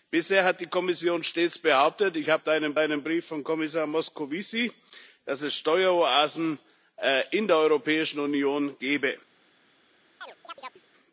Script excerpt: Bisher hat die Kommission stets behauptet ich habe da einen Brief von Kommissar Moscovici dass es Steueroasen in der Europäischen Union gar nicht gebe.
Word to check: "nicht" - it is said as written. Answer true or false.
false